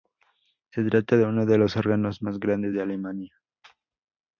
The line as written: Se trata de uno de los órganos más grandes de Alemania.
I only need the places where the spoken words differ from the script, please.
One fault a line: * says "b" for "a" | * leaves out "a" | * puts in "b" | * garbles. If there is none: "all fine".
all fine